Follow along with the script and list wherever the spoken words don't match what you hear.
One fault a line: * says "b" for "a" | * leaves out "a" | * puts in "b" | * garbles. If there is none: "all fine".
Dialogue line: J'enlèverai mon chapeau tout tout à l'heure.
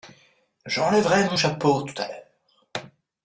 * leaves out "tout"